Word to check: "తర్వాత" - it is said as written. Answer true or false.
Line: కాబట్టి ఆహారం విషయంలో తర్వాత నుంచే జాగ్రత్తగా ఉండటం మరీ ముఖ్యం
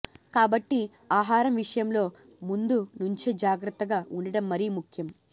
false